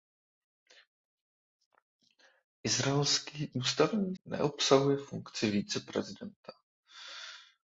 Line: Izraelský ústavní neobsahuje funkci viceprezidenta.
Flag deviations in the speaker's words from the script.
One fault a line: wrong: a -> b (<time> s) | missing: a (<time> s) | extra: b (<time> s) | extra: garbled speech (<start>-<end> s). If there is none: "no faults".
no faults